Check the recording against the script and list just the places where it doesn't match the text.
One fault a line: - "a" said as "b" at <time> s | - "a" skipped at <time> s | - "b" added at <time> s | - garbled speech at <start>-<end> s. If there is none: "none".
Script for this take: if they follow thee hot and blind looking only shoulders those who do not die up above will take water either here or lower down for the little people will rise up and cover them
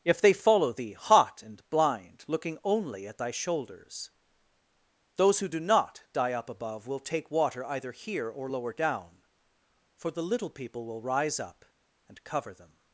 - "at thy" added at 3.1 s